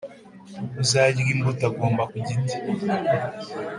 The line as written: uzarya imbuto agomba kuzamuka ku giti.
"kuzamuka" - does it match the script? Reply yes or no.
no